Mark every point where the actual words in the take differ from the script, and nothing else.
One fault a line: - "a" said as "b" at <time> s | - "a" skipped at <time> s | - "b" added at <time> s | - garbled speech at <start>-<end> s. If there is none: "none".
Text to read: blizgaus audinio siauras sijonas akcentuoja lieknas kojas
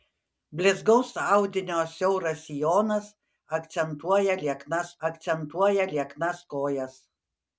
- "akcentuoja lieknas" added at 5.1 s